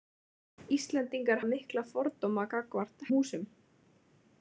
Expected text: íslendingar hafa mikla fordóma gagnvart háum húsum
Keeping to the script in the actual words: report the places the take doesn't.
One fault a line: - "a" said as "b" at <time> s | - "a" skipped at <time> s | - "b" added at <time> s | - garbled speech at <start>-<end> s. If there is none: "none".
- "hafa" skipped at 1.4 s
- "háum" skipped at 3.1 s